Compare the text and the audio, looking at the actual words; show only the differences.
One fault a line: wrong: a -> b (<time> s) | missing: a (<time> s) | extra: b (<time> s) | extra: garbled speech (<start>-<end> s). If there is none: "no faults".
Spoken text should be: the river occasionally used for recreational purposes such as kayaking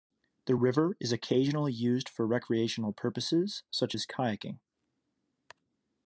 extra: is (1.0 s)